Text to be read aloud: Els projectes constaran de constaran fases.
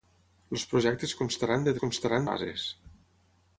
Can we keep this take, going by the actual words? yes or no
yes